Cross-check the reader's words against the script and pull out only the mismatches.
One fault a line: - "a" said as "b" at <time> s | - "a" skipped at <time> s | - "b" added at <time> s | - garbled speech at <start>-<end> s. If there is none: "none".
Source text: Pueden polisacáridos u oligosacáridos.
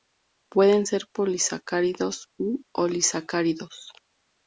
- "ser" added at 0.8 s